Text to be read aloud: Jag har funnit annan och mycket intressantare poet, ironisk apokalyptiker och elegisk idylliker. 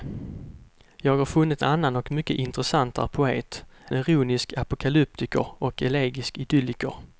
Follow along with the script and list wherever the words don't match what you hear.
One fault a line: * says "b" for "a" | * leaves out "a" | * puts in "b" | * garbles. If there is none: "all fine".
all fine